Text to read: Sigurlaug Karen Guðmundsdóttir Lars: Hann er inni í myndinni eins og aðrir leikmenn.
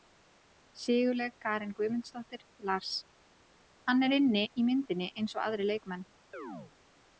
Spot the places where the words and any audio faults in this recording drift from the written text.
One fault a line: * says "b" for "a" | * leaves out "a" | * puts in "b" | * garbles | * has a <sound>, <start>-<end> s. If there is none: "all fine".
* has a chirp, 6.3-6.7 s